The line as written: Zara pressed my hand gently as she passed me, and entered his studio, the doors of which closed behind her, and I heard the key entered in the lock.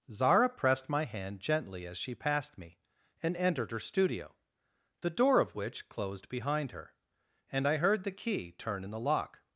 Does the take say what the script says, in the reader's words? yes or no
no